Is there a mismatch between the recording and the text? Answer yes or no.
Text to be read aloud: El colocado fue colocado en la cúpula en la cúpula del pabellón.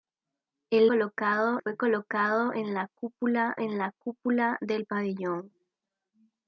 no